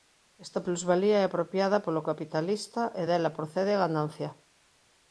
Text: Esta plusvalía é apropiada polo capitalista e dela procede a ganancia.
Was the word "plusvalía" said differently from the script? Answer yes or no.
no